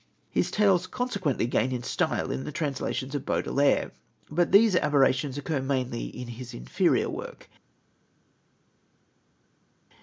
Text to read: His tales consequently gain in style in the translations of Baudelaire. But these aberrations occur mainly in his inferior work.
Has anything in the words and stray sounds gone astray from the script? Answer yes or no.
no